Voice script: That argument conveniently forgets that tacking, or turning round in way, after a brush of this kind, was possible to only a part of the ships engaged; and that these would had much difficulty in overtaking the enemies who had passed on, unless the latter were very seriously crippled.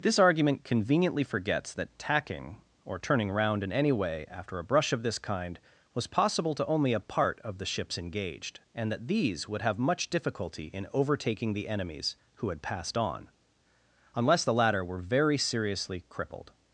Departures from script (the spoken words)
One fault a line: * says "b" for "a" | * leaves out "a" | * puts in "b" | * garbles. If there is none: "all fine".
* says "This" for "That"
* puts in "any"
* says "have" for "had"